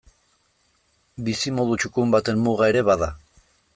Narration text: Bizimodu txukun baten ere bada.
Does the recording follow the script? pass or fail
fail